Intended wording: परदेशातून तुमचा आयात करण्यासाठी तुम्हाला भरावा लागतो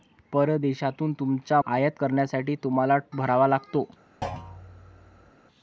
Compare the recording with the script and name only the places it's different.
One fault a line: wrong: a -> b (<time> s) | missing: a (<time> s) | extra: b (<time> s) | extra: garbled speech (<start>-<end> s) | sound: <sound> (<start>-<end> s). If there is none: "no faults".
sound: thud (4.2-5.3 s)